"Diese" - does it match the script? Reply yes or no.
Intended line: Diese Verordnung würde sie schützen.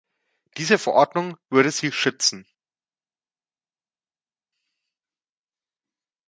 yes